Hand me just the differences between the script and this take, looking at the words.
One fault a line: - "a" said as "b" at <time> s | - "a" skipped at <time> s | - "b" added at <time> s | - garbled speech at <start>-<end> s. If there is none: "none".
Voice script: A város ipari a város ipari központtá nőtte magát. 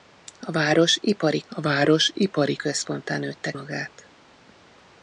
none